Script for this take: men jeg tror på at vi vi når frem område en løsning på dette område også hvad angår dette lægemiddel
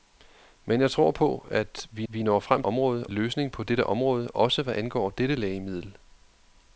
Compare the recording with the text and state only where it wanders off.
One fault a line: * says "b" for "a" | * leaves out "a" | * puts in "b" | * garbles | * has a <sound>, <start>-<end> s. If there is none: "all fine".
all fine